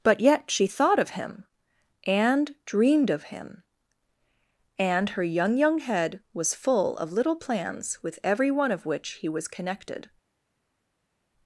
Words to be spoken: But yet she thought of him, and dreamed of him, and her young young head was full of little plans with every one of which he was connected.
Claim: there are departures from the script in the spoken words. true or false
false